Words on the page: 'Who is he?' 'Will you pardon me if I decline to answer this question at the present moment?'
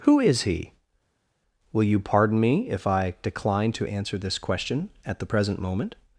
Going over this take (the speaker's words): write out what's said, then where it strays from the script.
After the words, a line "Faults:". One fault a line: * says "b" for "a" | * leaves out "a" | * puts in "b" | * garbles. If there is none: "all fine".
'Who is he?' 'Will you pardon me if I decline to answer this question at the present moment?'
Faults:
all fine